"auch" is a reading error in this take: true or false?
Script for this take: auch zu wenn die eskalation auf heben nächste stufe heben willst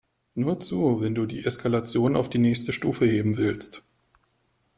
true